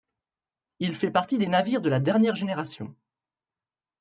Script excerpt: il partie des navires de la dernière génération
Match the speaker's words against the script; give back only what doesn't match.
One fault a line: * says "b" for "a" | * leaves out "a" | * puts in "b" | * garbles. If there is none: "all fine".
* puts in "fait"